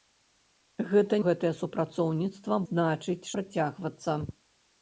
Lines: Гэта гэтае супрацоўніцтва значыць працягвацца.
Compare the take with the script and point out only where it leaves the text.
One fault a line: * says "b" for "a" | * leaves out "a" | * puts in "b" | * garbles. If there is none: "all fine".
all fine